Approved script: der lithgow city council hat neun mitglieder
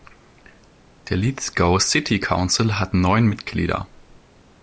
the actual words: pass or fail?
pass